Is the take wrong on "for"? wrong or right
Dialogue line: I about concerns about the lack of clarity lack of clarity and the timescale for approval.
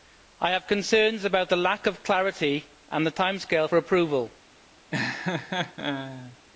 right